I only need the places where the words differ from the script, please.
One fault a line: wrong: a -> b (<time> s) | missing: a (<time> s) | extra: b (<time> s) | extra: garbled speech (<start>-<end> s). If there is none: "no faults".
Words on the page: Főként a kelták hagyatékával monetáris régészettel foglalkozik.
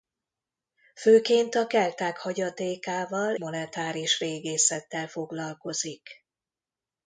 no faults